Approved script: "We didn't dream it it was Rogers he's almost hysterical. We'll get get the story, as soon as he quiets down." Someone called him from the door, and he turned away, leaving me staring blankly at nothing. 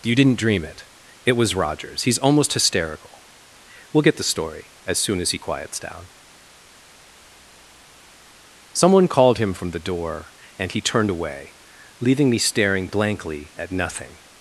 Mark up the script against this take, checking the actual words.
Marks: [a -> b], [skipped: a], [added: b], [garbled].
["We -> You] didn't dream it it was Rogers he's almost hysterical. We'll get [skipped: get] the story, as soon as he quiets down." Someone called him from the door, and he turned away, leaving me staring blankly at nothing.